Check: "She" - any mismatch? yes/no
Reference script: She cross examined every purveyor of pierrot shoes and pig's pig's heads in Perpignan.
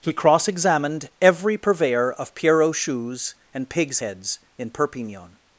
yes